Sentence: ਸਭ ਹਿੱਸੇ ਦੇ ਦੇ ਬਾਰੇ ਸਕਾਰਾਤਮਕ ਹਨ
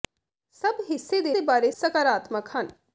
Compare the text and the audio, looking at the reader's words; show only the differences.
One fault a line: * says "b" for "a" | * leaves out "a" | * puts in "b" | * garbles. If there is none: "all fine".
all fine